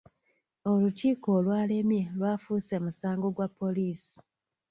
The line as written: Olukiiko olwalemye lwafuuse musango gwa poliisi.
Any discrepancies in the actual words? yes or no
no